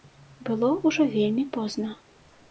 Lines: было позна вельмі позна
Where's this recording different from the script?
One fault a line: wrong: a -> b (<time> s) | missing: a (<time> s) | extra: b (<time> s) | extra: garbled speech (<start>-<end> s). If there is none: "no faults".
wrong: позна -> ўжо (0.8 s)